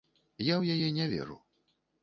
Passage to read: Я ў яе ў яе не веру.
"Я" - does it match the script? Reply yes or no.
yes